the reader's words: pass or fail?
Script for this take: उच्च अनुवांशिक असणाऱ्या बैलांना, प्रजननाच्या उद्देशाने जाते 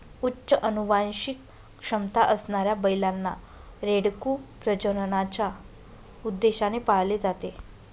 fail